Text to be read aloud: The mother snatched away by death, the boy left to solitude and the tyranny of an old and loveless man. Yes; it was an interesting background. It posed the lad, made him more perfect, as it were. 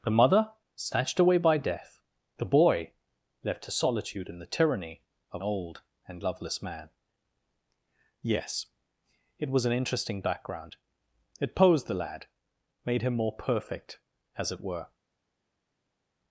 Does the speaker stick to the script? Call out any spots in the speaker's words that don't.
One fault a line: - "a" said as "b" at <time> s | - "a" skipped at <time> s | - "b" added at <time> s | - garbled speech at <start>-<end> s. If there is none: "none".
- "an" skipped at 5.4 s